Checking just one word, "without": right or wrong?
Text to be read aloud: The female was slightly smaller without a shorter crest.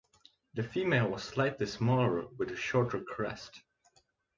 wrong